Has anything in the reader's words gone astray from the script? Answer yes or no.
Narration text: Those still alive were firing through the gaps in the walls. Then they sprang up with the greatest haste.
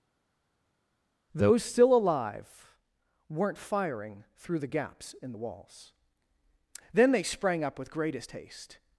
yes